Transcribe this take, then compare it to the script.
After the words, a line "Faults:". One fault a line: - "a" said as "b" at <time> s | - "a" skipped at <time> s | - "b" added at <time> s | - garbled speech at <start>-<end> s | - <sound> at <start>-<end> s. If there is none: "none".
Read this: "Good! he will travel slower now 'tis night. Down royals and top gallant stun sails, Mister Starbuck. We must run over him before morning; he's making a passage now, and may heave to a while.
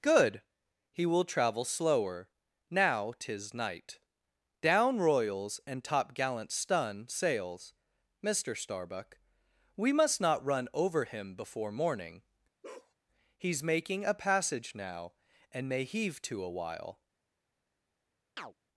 "Good! he will travel slower now 'tis night. Down royals and top gallant stun sails, Mister Starbuck. We must not run over him before morning; he's making a passage now, and may heave to a while.
Faults:
- "not" added at 10.2 s
- bark at 12.6-12.9 s
- chirp at 18.4-18.5 s